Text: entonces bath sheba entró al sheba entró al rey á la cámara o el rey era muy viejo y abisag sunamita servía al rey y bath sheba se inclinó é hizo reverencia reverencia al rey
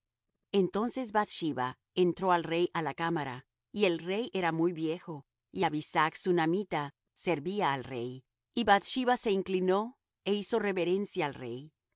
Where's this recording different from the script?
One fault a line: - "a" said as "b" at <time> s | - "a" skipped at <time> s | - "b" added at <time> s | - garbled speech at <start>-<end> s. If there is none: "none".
- "sheba entró al" skipped at 2.4 s
- "o" said as "y" at 3.7 s
- "reverencia" skipped at 11.3 s